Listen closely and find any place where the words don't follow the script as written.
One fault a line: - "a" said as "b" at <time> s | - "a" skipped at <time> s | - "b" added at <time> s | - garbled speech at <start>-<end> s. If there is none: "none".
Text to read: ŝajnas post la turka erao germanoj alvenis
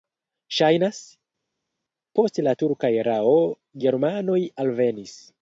none